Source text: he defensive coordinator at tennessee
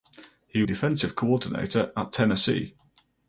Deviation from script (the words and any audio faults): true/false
false